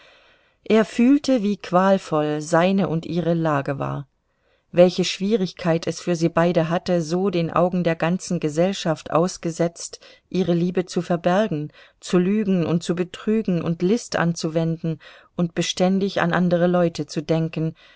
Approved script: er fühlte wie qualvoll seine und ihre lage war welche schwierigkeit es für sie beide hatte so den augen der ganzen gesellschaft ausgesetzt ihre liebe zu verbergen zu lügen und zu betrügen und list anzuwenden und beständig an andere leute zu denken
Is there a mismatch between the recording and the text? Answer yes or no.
no